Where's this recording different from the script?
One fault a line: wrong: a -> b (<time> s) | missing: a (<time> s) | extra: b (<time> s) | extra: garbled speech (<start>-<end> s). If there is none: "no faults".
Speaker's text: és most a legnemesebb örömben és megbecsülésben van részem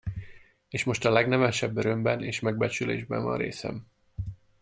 no faults